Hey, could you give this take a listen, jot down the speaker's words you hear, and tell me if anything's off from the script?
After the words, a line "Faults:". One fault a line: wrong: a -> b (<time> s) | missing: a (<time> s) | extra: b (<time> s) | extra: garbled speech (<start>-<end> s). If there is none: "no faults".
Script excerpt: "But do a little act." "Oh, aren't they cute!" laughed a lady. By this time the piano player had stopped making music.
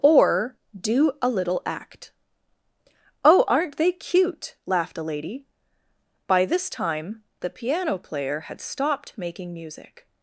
"Or do a little act." "Oh, aren't they cute!" laughed a lady. By this time the piano player had stopped making music.
Faults:
wrong: But -> Or (0.0 s)